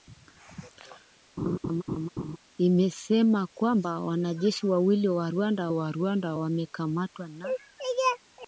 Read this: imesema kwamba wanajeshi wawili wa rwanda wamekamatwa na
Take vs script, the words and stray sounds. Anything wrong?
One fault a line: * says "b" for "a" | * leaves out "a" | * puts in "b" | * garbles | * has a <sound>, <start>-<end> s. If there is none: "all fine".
* has a laugh, 1.4-2.4 s
* puts in "wa rwanda"